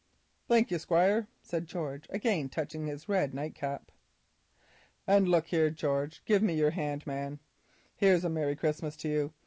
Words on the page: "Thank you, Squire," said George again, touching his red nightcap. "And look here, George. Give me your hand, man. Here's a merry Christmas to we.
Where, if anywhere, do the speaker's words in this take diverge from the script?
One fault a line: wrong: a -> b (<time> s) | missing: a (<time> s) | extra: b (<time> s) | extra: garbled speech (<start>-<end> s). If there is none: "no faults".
wrong: we -> you (9.1 s)